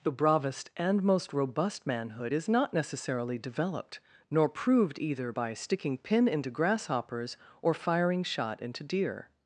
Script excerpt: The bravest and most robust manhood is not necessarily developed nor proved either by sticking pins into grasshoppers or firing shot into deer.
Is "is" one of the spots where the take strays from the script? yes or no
no